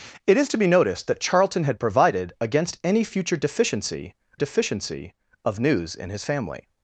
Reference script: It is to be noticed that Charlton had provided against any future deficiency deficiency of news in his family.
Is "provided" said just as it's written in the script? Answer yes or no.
yes